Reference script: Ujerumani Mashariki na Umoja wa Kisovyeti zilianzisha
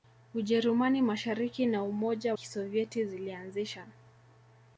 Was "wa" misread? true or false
true